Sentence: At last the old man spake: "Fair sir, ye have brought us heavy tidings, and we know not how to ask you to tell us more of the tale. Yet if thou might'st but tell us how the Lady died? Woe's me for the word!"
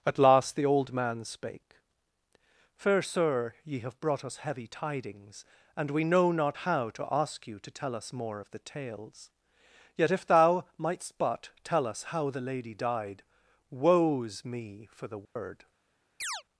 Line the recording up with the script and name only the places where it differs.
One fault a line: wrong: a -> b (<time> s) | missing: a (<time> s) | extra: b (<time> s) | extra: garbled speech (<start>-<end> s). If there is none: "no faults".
wrong: tale -> tales (8.6 s)